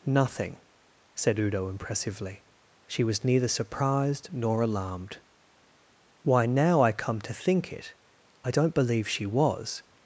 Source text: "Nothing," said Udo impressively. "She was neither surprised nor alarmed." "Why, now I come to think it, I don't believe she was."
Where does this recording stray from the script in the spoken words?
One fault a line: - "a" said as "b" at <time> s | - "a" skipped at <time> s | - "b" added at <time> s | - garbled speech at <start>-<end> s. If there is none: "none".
none